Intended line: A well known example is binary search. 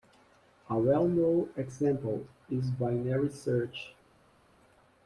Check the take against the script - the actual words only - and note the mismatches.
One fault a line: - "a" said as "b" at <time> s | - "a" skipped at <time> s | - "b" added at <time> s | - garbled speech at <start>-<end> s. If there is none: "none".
none